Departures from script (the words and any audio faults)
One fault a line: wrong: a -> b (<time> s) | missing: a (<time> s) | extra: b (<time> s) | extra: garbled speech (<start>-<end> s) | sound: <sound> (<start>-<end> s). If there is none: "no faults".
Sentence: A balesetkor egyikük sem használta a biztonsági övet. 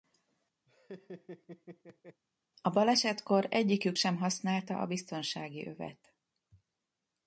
sound: laugh (0.7-2.2 s)